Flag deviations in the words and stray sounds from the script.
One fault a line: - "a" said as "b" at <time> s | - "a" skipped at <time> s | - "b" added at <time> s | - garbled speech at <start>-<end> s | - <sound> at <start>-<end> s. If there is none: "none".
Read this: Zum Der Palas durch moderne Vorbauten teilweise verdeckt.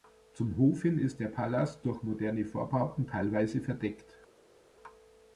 - "Hof hin ist" added at 0.6 s